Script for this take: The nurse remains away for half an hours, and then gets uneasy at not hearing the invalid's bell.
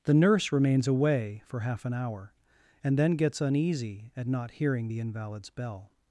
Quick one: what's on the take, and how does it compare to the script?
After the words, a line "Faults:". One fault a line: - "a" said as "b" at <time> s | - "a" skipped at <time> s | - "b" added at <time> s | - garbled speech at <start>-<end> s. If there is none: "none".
The nurse remains away for half an hour, and then gets uneasy at not hearing the invalid's bell.
Faults:
- "hours" said as "hour" at 1.9 s